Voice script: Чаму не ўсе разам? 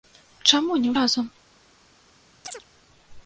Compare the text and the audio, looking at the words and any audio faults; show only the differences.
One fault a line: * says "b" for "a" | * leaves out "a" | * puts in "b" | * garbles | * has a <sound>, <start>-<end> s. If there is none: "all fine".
* leaves out "ўсе"
* has a chirp, 2.4-2.6 s